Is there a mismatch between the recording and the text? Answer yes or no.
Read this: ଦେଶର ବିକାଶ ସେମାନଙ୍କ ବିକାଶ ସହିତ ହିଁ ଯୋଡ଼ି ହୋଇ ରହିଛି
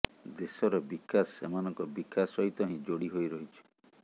no